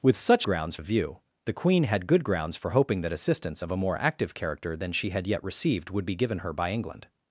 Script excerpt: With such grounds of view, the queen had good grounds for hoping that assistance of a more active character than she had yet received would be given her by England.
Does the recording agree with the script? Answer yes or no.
yes